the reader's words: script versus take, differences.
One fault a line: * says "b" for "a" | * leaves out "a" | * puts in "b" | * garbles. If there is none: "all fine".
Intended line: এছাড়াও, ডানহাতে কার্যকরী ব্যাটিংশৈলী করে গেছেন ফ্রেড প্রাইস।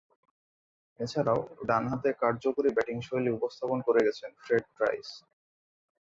* puts in "উপস্থাপন"